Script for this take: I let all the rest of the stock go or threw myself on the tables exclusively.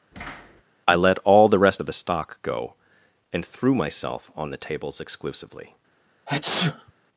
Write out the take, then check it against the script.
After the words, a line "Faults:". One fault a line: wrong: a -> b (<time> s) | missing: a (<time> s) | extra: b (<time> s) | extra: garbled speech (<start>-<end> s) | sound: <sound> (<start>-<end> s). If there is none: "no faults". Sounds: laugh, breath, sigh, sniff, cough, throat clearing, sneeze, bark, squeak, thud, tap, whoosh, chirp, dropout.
I let all the rest of the stock go and threw myself on the tables exclusively.
Faults:
sound: thud (0.1-0.6 s)
wrong: or -> and (3.3 s)
sound: sneeze (6.3-6.9 s)